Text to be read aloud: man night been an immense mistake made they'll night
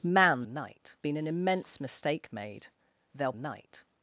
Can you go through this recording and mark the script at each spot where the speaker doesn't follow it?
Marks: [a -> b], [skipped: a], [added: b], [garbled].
man night been an immense mistake made they'll night